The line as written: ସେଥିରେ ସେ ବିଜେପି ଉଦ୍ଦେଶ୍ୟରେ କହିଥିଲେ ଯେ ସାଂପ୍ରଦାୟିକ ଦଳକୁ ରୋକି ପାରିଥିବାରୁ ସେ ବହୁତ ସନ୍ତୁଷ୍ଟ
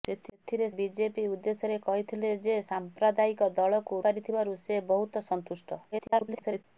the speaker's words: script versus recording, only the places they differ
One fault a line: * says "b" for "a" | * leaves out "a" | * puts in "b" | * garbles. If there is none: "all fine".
* leaves out "ସେ"
* leaves out "ରୋକି"
* garbles